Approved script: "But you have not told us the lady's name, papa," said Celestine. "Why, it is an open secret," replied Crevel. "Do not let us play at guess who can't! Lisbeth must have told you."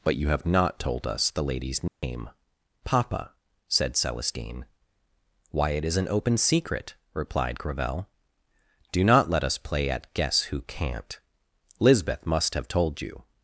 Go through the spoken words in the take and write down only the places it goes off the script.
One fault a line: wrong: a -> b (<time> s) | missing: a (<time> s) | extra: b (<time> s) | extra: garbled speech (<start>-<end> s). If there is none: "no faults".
no faults